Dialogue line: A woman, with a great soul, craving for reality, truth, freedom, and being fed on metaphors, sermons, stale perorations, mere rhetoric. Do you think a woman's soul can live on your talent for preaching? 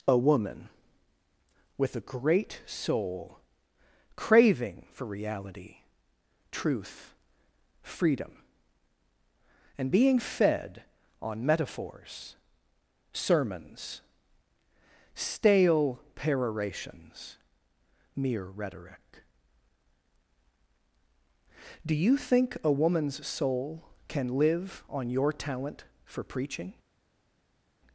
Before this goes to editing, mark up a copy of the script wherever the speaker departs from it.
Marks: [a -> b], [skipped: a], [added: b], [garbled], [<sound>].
A woman, with a great soul, craving for reality, truth, freedom, and being fed on metaphors, sermons, stale perorations, mere rhetoric. Do you think a woman's soul can live on your talent for preaching?